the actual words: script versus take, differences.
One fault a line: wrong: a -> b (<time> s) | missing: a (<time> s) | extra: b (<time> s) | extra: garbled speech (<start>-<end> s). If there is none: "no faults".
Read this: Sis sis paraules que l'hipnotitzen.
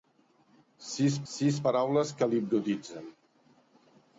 no faults